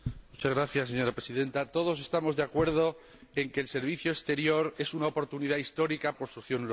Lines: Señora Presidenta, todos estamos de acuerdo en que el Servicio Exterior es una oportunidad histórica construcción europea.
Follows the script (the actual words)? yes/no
yes